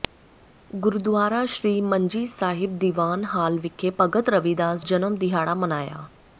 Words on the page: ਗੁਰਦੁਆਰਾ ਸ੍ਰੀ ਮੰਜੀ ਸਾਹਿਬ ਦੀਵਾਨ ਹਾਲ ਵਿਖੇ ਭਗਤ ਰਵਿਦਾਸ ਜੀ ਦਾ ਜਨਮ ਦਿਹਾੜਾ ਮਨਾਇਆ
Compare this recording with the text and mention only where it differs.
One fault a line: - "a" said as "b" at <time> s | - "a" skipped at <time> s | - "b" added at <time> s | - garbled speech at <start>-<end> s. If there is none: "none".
- "ਜੀ ਦਾ" skipped at 4.8 s